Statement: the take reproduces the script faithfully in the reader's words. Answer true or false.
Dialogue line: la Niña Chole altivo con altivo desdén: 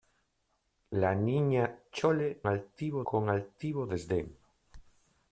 true